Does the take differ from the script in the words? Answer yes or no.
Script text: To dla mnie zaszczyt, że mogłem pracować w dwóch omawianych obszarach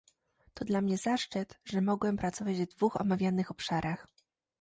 no